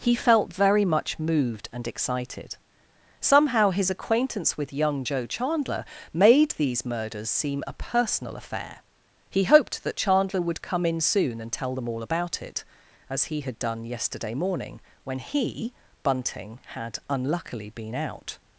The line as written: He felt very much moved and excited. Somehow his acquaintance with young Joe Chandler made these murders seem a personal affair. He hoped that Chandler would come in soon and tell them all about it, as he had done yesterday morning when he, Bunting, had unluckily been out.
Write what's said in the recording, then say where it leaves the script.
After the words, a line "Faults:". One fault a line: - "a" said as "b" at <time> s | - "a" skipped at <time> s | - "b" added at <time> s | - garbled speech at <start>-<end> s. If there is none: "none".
He felt very much moved and excited. Somehow his acquaintance with young Joe Chandler made these murders seem a personal affair. He hoped that Chandler would come in soon and tell them all about it, as he had done yesterday morning when he, Bunting, had unluckily been out.
Faults:
none